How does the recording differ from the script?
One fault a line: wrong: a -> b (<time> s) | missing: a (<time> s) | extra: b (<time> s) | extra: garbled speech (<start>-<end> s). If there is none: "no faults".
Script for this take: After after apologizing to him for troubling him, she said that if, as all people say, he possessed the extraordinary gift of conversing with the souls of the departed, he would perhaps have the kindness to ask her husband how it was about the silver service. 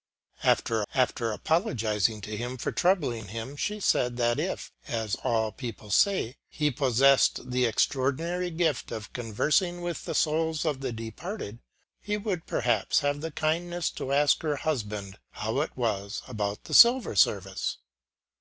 no faults